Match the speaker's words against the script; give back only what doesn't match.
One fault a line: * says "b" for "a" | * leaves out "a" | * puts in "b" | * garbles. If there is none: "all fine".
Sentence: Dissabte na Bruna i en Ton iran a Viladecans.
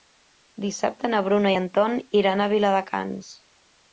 all fine